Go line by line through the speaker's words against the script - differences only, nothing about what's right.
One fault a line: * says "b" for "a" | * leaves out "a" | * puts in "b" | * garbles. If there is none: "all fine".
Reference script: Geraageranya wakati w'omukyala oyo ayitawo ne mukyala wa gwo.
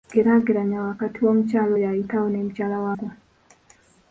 all fine